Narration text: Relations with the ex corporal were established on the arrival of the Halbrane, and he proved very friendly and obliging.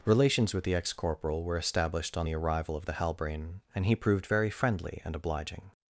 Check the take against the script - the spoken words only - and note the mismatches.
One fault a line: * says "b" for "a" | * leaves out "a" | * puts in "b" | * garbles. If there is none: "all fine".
all fine